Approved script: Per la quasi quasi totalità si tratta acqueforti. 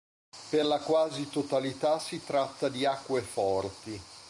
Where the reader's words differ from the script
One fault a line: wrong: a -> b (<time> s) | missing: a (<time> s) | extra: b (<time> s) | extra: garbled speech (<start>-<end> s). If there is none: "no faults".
missing: quasi (1.3 s)
extra: di (2.7 s)